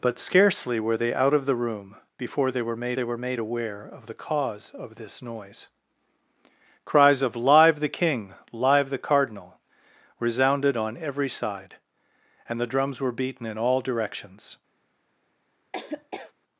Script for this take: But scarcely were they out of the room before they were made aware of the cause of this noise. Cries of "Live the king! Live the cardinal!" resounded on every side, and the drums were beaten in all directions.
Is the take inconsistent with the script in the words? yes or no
yes